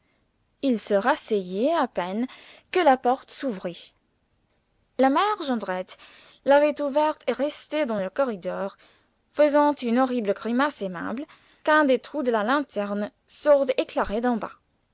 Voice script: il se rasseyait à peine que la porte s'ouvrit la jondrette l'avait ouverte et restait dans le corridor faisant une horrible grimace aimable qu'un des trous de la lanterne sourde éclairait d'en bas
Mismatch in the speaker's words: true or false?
true